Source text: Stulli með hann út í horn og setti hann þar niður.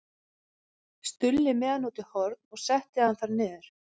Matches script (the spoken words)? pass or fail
pass